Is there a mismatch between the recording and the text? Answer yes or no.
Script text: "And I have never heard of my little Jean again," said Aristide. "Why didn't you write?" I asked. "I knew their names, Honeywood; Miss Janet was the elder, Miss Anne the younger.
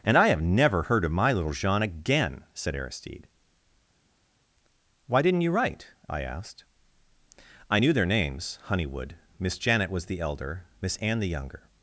no